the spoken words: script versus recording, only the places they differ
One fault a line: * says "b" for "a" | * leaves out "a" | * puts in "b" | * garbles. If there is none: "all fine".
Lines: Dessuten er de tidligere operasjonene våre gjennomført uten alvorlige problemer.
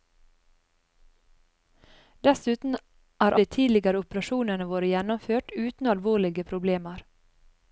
all fine